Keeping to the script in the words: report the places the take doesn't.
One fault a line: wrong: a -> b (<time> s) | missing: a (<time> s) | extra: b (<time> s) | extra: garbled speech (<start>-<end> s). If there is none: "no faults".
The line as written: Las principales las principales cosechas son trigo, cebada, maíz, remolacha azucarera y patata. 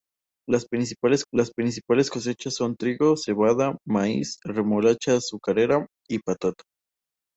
no faults